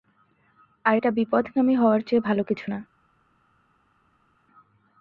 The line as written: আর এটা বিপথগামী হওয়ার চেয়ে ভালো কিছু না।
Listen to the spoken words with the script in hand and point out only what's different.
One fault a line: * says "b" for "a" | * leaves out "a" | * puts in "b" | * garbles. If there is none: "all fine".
all fine